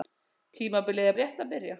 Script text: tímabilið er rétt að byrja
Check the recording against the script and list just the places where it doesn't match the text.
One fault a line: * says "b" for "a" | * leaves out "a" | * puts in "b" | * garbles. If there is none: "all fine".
all fine